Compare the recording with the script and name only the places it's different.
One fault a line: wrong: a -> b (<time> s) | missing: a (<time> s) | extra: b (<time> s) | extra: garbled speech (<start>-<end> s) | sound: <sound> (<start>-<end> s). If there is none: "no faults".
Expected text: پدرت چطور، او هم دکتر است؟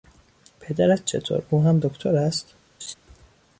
sound: laugh (2.8-2.9 s)